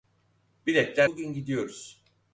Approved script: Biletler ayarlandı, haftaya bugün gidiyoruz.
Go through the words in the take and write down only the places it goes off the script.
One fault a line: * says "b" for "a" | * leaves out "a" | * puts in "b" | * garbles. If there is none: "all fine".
* leaves out "ayarlandı haftaya"